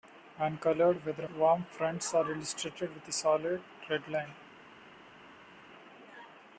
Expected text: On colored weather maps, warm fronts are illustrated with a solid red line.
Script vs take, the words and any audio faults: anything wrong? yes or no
yes